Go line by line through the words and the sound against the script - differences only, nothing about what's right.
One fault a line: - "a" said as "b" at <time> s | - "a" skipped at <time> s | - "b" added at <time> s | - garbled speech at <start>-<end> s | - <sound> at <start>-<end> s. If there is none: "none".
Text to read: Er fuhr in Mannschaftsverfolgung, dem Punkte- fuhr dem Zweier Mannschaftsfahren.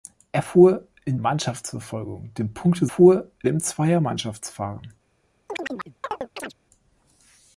- chirp at 5.5-6.5 s